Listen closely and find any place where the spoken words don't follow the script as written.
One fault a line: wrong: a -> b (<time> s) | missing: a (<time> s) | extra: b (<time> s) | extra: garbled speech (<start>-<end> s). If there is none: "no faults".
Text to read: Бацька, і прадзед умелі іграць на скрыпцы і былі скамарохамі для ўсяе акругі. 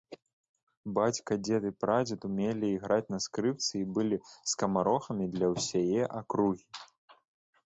extra: дзед (1.5 s)